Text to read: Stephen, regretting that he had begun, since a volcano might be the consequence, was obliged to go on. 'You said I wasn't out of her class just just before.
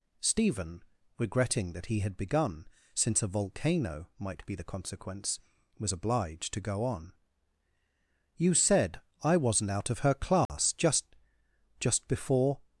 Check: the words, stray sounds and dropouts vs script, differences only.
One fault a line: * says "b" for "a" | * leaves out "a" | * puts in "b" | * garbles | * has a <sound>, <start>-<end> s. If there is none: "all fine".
* has a dropout, 10.5-10.5 s